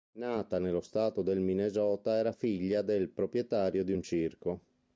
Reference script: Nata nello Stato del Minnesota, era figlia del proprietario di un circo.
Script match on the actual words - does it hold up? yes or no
yes